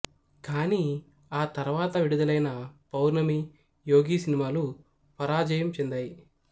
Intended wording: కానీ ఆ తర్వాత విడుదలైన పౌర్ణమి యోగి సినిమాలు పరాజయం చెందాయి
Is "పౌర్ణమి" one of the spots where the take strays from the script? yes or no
no